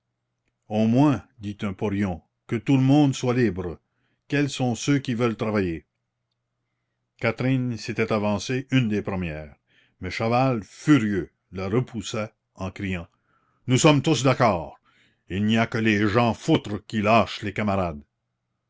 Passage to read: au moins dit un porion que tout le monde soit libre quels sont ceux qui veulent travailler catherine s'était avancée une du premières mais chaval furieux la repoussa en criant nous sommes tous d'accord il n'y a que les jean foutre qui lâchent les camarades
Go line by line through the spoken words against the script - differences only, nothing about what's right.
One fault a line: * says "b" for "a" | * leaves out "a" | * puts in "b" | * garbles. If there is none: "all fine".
* says "des" for "du"